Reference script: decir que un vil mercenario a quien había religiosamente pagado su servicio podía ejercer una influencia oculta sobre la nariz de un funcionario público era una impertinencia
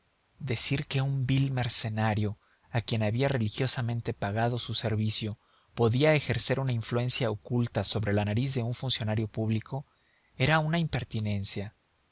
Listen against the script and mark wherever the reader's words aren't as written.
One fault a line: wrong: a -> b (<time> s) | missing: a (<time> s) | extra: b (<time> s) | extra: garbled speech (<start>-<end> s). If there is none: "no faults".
no faults